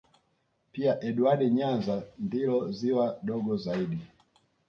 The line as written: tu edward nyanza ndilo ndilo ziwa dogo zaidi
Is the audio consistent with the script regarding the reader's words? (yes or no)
no